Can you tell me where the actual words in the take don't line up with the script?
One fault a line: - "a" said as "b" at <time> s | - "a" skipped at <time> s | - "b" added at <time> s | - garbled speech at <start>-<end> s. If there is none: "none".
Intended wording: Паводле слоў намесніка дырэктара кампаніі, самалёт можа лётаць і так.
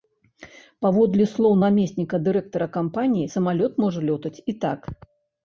none